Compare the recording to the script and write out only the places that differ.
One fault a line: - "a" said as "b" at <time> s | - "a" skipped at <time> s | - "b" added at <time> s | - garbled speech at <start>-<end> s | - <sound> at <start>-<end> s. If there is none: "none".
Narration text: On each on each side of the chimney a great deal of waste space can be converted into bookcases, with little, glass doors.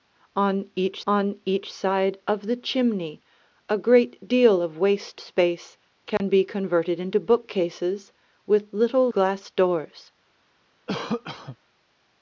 - dropout at 6.2-6.2 s
- cough at 10.9-11.6 s